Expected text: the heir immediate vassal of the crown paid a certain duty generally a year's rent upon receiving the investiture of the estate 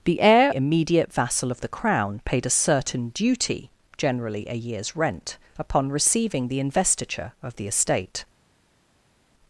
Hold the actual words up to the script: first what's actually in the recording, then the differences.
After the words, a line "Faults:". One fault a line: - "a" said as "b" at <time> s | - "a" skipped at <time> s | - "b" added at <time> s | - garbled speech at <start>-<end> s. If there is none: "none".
the heir immediate vassal of the crown paid a certain duty generally a year's rent upon receiving the investiture of the estate
Faults:
none